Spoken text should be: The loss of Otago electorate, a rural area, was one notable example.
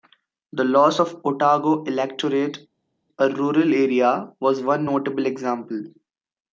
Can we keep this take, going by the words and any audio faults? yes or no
yes